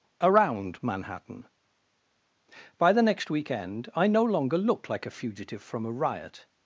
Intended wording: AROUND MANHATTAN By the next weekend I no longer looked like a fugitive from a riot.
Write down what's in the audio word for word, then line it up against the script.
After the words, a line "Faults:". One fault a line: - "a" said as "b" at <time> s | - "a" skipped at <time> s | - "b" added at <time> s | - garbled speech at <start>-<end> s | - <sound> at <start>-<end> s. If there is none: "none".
AROUND MANHATTAN By the next weekend I no longer looked like a fugitive from a riot.
Faults:
none